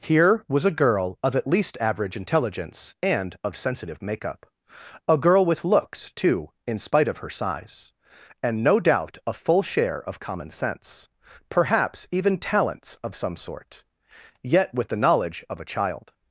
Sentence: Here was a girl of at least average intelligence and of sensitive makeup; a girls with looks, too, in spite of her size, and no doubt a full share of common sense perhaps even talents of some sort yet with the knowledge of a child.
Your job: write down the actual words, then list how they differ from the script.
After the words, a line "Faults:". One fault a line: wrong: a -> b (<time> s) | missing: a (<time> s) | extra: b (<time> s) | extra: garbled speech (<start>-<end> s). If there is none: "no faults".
Here was a girl of at least average intelligence and of sensitive makeup; a girl with looks, too, in spite of her size, and no doubt a full share of common sense perhaps even talents of some sort yet with the knowledge of a child.
Faults:
wrong: girls -> girl (5.2 s)